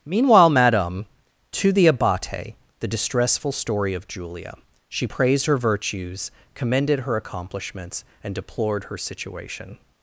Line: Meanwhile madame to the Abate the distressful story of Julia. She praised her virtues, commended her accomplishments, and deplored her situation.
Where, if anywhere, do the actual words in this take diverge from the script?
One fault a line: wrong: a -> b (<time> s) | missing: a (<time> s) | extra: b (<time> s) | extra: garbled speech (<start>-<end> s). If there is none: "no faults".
no faults